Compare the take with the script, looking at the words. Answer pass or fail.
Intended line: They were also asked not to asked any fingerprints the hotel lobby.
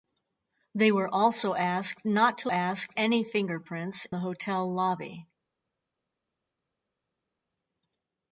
pass